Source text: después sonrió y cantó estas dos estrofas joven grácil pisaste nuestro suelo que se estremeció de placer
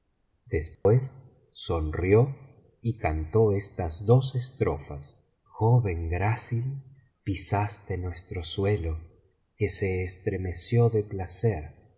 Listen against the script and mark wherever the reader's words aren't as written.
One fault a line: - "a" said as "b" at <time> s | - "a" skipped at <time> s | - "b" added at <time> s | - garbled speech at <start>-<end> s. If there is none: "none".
none